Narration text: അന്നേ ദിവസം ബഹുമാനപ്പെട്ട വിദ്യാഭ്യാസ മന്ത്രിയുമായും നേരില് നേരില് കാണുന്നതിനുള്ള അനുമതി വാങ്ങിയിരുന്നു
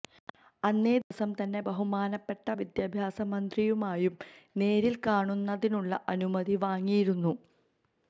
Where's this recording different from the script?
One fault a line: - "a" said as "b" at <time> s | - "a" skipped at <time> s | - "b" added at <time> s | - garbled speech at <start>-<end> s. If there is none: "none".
- "തന്നെ" added at 1.4 s
- "നേരില്" skipped at 5.0 s